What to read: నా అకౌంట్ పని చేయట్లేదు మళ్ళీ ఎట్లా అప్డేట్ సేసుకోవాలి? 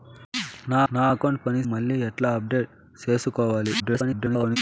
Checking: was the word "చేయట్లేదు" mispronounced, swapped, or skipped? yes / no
yes